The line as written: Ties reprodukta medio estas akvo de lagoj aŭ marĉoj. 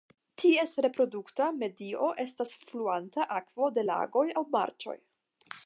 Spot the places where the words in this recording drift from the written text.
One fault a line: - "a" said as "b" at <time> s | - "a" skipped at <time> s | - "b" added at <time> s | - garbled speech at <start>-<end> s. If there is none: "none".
- "fluanta" added at 2.7 s